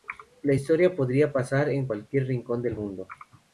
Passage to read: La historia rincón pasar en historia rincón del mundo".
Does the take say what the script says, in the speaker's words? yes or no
no